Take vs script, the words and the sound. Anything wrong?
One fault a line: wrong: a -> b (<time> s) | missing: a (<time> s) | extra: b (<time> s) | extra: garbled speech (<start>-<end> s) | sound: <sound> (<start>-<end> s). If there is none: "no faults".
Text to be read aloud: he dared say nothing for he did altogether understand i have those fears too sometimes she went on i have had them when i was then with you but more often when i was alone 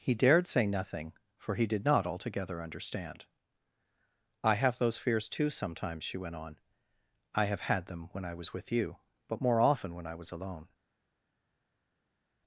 extra: not (1.9 s)
missing: then (8.5 s)